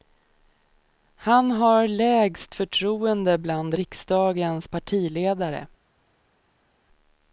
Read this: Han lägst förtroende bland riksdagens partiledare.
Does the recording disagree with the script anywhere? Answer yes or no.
yes